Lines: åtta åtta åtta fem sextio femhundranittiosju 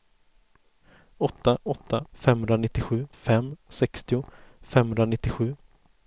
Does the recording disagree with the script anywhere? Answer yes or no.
yes